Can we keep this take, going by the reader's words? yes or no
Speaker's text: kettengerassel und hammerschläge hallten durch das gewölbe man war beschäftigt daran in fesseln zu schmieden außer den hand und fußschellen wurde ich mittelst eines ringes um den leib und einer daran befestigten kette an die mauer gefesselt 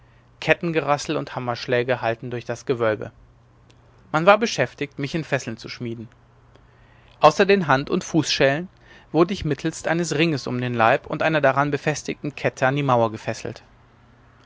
no